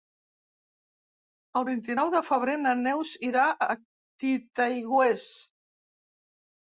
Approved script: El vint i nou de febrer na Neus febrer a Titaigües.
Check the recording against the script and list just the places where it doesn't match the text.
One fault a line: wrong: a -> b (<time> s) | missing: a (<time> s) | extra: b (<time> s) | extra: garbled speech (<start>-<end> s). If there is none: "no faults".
wrong: febrer -> irà (3.3 s)